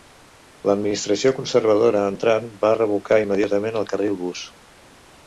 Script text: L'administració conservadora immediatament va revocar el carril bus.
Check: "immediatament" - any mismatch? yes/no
yes